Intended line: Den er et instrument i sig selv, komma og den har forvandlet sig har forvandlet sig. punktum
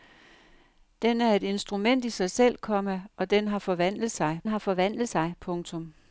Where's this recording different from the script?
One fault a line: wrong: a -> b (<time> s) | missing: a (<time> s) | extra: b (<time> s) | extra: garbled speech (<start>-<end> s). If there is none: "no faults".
no faults